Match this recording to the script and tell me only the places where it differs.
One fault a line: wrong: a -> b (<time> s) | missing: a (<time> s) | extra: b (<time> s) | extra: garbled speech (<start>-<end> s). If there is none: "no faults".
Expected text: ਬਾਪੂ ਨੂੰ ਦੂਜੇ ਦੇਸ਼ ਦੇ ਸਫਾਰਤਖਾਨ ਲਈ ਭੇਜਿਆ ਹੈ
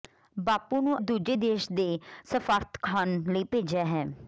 no faults